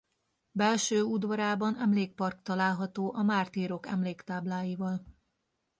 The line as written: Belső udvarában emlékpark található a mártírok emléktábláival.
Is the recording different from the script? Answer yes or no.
no